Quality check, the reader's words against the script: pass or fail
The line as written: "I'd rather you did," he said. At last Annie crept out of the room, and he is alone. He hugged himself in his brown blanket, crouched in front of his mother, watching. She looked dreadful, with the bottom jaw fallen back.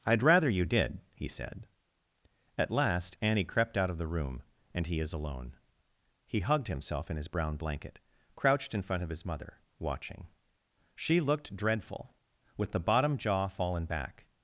pass